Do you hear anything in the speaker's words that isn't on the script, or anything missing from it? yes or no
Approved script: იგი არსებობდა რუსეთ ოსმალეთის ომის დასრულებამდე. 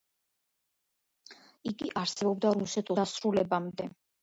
yes